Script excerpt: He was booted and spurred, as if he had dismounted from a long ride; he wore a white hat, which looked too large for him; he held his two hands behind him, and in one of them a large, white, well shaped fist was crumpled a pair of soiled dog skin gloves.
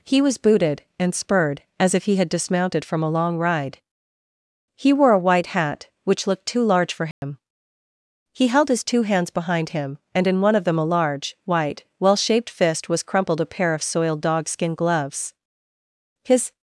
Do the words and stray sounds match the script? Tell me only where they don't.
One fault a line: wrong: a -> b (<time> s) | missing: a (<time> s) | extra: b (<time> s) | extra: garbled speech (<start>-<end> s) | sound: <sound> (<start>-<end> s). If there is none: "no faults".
sound: dropout (7.1-7.2 s)
extra: His (16.2 s)